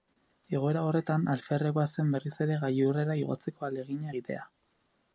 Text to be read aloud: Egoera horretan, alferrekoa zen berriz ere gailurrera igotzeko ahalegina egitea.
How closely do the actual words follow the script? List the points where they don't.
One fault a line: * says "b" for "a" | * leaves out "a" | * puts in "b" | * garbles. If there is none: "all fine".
all fine